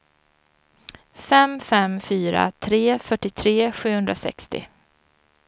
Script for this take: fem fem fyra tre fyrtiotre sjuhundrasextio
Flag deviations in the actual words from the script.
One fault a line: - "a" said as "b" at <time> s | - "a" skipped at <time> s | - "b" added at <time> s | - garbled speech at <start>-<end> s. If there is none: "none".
none